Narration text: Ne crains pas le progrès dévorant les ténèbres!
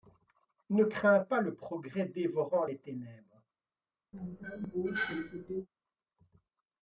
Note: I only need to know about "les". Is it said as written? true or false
true